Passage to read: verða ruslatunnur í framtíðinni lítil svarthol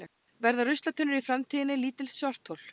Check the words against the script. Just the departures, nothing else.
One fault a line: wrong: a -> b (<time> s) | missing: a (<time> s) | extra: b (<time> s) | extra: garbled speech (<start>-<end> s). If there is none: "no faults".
no faults